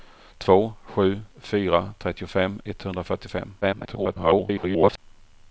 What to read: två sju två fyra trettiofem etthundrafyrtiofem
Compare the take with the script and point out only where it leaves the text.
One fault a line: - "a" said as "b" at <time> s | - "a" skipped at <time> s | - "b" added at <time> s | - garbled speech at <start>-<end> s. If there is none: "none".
- "två" skipped at 1.2 s
- garbled speech at 3.6-5.0 s